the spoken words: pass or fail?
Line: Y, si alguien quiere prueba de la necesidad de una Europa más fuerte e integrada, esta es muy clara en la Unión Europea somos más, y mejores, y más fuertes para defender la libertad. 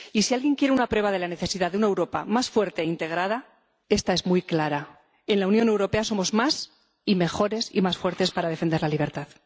fail